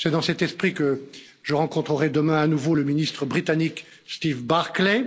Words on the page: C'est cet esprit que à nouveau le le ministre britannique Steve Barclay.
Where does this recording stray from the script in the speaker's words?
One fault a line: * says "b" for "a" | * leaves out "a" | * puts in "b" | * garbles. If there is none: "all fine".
* puts in "dans"
* puts in "je rencontrerai demain"
* leaves out "le"